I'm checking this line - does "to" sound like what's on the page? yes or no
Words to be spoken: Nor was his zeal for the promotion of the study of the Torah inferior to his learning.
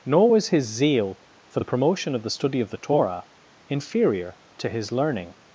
yes